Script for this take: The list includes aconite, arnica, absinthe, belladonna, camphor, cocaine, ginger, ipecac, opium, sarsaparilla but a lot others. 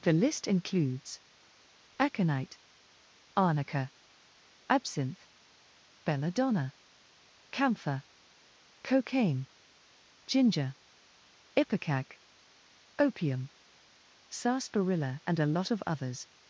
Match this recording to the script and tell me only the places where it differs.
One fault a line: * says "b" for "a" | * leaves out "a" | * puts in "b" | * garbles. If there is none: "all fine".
* says "and" for "but"
* puts in "of"